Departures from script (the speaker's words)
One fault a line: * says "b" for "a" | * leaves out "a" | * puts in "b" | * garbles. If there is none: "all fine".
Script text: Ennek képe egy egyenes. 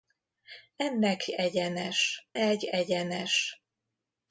* says "egyenes" for "képe"